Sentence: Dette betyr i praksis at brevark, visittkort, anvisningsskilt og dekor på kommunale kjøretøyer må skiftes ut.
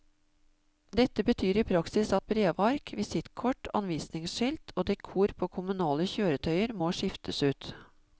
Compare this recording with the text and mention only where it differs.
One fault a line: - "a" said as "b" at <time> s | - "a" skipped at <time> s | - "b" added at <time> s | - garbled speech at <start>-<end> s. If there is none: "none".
none